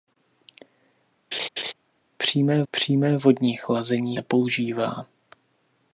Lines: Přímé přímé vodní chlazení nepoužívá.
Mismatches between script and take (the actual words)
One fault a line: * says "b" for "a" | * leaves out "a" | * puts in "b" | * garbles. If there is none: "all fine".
all fine